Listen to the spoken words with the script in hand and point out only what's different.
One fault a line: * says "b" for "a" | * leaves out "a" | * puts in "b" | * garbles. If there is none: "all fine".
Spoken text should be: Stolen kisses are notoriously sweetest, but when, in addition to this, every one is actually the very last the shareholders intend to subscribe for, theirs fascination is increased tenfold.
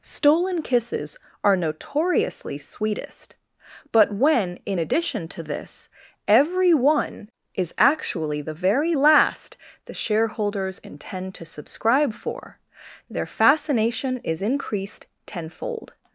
* says "their" for "theirs"